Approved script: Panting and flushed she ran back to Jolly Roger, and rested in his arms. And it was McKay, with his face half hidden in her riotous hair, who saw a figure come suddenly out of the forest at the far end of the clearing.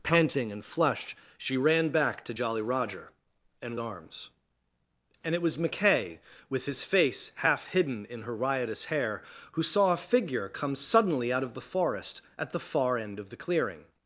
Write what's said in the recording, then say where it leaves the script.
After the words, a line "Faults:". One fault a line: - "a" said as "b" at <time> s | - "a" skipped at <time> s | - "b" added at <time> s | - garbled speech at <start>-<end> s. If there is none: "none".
Panting and flushed she ran back to Jolly Roger, and arms. And it was McKay, with his face half hidden in her riotous hair, who saw a figure come suddenly out of the forest at the far end of the clearing.
Faults:
- "rested in his" skipped at 3.8 s